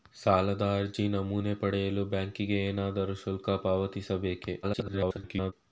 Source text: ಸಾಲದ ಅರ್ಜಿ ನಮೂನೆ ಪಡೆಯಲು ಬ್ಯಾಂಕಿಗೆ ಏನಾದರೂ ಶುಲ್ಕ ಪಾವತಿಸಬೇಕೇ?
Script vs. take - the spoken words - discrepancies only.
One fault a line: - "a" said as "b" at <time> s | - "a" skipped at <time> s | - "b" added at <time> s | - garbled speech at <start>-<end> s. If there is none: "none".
- garbled speech at 4.6-5.5 s